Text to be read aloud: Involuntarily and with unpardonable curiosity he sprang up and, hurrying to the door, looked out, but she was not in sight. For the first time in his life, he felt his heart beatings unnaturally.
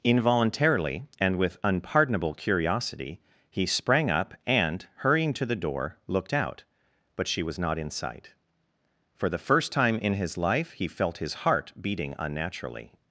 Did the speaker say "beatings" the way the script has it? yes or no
no